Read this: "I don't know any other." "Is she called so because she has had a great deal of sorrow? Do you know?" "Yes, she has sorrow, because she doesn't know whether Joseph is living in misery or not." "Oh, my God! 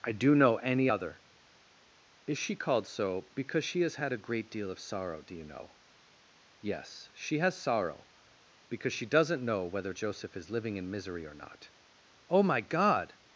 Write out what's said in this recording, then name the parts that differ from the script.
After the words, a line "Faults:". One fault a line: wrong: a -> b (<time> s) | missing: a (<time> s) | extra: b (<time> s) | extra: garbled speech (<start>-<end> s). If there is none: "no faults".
"I do know any other." "Is she called so because she has had a great deal of sorrow? Do you know?" "Yes, she has sorrow, because she doesn't know whether Joseph is living in misery or not." "Oh, my God!
Faults:
wrong: don't -> do (0.1 s)